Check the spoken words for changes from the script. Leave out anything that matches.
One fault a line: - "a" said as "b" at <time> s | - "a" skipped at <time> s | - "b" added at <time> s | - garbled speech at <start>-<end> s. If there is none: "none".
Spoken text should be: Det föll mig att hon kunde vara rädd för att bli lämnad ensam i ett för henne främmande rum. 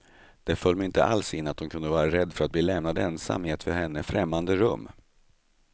- "inte alls in" added at 0.8 s